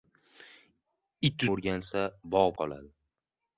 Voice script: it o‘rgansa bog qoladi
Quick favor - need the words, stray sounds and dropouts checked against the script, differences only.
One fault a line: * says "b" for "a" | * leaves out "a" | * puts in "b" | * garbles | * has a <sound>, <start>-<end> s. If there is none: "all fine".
all fine